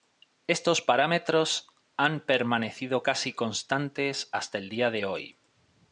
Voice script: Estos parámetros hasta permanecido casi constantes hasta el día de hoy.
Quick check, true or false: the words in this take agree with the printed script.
false